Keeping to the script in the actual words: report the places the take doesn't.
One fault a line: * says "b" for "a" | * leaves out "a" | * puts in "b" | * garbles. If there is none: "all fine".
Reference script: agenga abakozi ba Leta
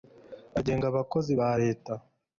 all fine